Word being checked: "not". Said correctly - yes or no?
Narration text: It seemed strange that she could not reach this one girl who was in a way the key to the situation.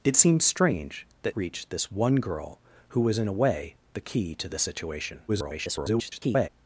no